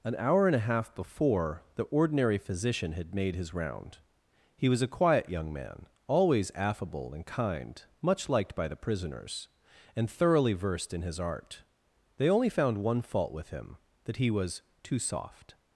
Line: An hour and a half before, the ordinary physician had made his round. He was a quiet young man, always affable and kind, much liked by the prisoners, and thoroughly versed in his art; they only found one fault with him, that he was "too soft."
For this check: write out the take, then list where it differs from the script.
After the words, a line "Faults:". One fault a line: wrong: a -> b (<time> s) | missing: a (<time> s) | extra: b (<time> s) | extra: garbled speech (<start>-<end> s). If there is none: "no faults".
An hour and a half before, the ordinary physician had made his round. He was a quiet young man, always affable and kind, much liked by the prisoners, and thoroughly versed in his art; they only found one fault with him, that he was "too soft."
Faults:
no faults